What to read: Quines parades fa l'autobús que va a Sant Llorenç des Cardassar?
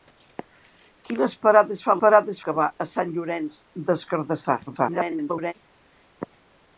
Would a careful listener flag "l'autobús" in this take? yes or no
yes